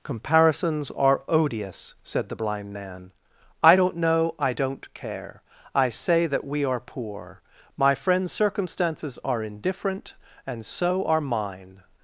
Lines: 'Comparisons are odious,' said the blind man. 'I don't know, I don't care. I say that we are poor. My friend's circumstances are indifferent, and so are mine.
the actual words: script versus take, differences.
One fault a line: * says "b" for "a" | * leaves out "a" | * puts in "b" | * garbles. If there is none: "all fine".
all fine